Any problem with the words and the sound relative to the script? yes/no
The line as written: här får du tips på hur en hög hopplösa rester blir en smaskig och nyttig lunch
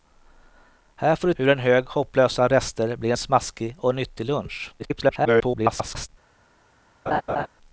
yes